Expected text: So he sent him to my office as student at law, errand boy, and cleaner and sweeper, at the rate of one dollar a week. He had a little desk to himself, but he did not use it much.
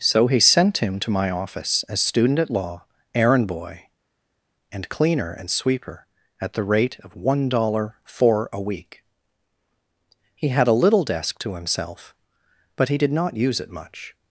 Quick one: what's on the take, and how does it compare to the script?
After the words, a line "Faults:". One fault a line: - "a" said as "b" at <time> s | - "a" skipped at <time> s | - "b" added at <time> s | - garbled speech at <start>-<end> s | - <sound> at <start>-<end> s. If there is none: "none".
So he sent him to my office as student at law, errand boy, and cleaner and sweeper, at the rate of one dollar four a week. He had a little desk to himself, but he did not use it much.
Faults:
- "four" added at 8.0 s